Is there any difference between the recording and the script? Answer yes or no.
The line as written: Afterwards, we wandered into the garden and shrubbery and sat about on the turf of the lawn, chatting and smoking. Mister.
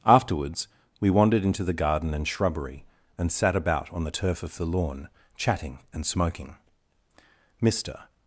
no